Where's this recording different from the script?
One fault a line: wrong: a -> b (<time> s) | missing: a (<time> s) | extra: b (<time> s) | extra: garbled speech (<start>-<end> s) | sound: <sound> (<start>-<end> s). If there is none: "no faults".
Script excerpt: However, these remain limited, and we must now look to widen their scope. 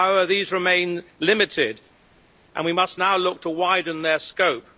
no faults